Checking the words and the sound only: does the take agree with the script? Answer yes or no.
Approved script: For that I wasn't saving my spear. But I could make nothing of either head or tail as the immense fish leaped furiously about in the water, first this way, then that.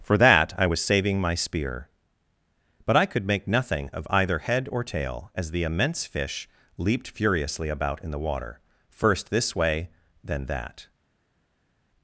no